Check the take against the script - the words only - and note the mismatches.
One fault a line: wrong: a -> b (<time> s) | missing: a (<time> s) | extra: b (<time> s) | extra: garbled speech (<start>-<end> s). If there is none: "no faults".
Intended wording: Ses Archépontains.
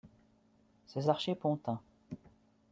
no faults